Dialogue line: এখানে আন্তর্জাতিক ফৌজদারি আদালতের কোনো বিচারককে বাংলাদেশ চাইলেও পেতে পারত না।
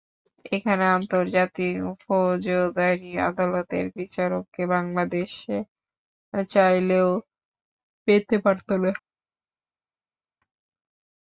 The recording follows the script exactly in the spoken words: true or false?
false